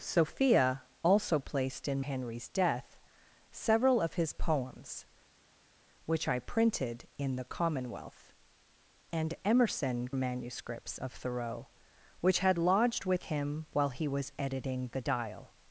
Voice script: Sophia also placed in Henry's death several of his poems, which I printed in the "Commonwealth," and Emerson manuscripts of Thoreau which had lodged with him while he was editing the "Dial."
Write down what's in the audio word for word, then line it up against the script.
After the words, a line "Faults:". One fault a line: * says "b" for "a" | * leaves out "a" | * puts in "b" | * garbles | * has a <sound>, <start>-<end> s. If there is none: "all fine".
Sophia also placed in Henry's death several of his poems, which I printed in the "Commonwealth," and Emerson manuscripts of Thoreau which had lodged with him while he was editing the "Dial."
Faults:
all fine